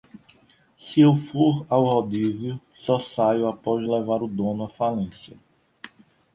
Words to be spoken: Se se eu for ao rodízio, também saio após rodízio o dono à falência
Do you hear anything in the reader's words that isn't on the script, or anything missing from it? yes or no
yes